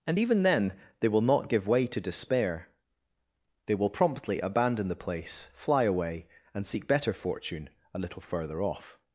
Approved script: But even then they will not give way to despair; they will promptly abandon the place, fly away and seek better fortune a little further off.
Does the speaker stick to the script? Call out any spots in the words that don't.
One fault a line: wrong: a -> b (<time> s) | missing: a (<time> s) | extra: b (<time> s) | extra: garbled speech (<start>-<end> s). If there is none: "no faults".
wrong: But -> And (0.1 s)